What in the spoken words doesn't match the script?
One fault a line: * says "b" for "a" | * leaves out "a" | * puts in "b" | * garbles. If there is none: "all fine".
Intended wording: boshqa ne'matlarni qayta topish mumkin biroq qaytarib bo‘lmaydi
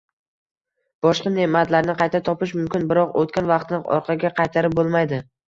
* puts in "o‘tgan vaqtni orqaga"